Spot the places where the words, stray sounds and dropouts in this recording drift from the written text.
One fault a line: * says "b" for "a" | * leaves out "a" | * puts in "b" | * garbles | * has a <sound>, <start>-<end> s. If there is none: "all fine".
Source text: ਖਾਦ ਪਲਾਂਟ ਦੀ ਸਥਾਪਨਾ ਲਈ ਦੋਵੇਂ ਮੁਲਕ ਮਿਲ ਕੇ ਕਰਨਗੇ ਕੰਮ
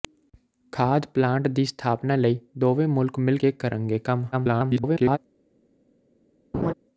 * garbles
* has a laugh, 6.5-6.7 s